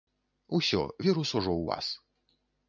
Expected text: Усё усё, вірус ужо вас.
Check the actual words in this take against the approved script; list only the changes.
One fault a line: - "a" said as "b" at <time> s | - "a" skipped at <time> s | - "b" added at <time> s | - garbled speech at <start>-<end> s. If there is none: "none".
- "усё" skipped at 0.8 s
- "ў" added at 1.5 s